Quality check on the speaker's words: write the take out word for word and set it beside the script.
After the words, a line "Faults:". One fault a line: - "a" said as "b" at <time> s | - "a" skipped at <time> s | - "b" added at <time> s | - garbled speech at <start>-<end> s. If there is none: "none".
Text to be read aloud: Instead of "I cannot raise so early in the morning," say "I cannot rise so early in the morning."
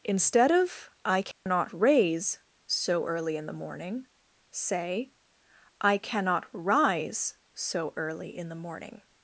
Instead of "I cannot raise so early in the morning," say "I cannot rise so early in the morning."
Faults:
none